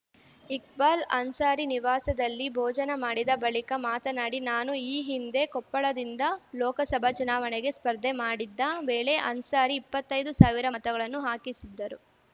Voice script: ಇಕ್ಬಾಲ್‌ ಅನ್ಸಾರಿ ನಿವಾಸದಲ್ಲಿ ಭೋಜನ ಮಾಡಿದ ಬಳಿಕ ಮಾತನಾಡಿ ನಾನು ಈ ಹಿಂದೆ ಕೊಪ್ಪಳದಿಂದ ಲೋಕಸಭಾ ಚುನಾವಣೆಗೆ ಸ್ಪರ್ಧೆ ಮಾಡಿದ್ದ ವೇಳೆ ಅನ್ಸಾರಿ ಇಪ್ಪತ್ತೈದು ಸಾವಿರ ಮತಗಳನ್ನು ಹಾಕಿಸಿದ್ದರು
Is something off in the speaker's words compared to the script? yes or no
no